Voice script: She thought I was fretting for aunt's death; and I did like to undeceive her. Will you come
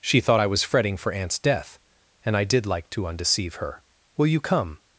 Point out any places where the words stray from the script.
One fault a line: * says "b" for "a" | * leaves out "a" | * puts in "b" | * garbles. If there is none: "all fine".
all fine